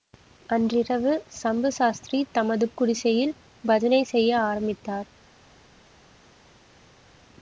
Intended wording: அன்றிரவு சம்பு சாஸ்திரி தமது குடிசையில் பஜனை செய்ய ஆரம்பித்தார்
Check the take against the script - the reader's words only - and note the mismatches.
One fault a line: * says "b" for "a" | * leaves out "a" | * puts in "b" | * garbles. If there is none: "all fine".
all fine